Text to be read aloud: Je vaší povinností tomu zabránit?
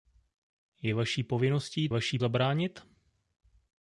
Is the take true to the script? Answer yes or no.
no